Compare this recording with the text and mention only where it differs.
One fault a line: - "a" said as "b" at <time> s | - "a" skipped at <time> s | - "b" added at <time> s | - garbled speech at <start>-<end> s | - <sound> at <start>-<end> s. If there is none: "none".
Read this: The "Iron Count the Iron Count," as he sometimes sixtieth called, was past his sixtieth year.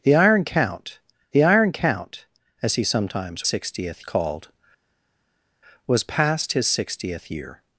none